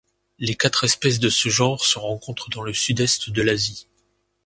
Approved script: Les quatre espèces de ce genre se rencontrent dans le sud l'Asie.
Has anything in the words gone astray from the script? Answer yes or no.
yes